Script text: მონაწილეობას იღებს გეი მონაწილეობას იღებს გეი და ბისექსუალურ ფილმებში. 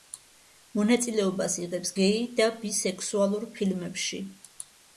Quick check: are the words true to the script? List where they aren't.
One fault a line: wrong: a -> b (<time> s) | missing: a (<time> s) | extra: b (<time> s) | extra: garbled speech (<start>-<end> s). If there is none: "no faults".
missing: მონაწილეობას იღებს გეი (2.3 s)